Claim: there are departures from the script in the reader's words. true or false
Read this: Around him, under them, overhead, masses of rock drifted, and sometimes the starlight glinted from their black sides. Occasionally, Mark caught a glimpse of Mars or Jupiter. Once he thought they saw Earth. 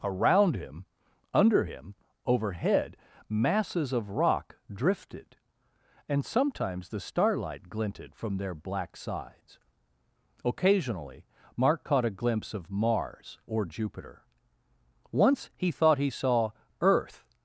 true